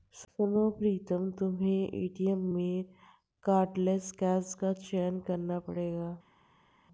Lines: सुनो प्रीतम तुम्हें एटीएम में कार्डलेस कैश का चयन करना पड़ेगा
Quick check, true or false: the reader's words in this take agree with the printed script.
true